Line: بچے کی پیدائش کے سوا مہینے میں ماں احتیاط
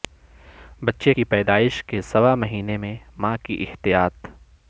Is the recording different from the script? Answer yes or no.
yes